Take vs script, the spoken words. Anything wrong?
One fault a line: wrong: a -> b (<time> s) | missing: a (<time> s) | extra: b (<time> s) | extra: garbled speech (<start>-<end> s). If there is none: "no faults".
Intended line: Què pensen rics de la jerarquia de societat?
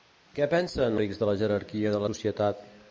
no faults